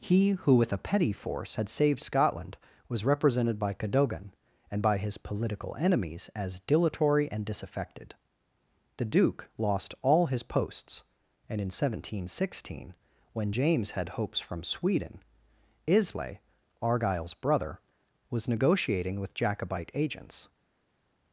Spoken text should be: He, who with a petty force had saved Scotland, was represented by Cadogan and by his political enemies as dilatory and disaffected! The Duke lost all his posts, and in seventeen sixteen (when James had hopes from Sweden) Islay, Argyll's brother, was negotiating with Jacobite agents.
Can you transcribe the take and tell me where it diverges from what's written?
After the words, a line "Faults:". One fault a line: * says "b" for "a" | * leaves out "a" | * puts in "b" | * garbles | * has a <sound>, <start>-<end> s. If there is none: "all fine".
He, who with a petty force had saved Scotland, was represented by Cadogan and by his political enemies as dilatory and disaffected! The Duke lost all his posts, and in seventeen sixteen (when James had hopes from Sweden) Islay, Argyll's brother, was negotiating with Jacobite agents.
Faults:
all fine